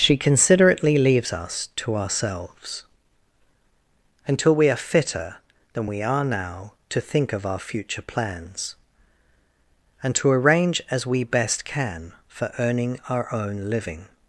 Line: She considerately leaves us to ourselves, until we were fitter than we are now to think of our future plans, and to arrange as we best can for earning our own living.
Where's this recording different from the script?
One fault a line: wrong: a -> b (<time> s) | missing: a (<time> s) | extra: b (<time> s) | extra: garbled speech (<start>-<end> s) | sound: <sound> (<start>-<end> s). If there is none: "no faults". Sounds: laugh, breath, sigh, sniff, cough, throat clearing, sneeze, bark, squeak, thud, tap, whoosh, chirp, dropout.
wrong: were -> are (4.7 s)